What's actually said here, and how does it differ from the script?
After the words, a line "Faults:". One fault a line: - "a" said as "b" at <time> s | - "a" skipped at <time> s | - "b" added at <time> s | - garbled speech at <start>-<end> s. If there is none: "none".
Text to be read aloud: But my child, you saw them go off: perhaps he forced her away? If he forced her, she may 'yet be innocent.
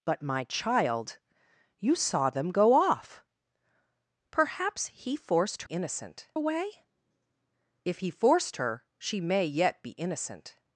But my child, you saw them go off: perhaps he forced innocent away? If he forced her, she may 'yet be innocent.
Faults:
- "her" said as "innocent" at 5.6 s